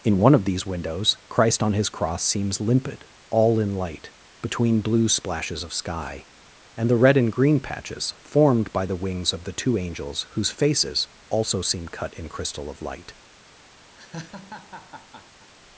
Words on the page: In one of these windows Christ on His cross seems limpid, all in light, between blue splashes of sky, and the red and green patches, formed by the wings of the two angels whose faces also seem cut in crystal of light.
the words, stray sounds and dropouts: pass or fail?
fail